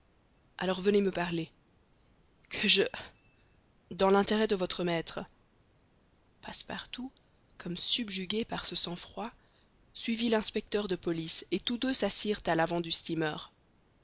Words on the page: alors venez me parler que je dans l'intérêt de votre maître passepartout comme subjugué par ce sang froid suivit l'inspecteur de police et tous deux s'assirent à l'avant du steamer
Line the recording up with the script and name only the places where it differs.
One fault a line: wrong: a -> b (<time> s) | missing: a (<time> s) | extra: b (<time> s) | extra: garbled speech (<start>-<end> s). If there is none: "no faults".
no faults